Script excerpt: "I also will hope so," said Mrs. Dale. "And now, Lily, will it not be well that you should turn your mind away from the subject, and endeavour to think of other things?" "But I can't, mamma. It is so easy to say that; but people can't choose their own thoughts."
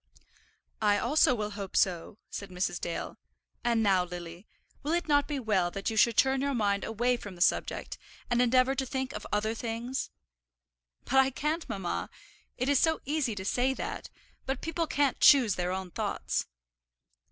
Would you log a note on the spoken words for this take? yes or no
no